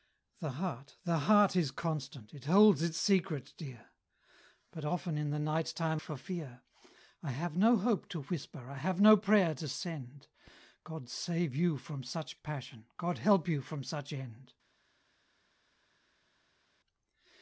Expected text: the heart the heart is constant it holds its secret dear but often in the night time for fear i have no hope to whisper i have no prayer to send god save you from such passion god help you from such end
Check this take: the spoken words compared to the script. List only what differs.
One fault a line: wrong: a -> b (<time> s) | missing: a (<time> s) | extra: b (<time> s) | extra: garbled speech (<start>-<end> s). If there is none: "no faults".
no faults